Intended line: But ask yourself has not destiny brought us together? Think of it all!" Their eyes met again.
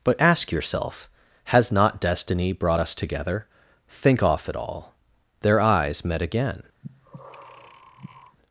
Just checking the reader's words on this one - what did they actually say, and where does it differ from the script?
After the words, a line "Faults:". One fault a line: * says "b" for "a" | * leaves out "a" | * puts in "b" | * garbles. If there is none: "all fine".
But ask yourself has not destiny brought us together? Think off it all!" Their eyes met again.
Faults:
* says "off" for "of"